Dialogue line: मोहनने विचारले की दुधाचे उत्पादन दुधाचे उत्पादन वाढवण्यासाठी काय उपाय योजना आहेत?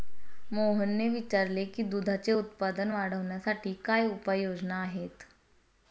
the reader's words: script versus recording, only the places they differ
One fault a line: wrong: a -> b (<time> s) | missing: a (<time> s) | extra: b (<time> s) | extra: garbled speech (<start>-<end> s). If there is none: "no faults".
missing: दुधाचे उत्पादन (2.9 s)